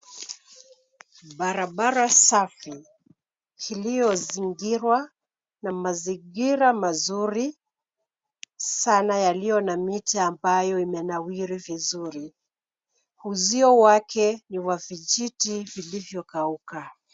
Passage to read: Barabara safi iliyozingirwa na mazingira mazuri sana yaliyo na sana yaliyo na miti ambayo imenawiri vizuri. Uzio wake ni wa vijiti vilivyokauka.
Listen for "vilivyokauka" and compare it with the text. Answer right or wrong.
right